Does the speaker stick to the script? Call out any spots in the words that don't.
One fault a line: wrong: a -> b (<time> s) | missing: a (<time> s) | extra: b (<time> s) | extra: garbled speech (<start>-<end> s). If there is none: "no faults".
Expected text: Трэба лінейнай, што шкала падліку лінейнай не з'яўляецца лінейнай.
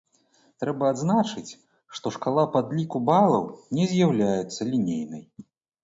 wrong: лінейнай -> адзначыць (0.9 s)
wrong: лінейнай -> балаў (3.1 s)